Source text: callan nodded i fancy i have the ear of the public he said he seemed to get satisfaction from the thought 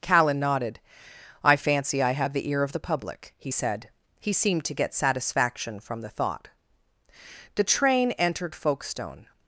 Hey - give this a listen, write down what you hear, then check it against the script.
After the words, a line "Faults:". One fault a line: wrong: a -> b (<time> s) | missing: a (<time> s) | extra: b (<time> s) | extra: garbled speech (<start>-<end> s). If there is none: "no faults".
callan nodded i fancy i have the ear of the public he said he seemed to get satisfaction from the thought the train entered folkestone
Faults:
extra: the train entered folkestone (7.5 s)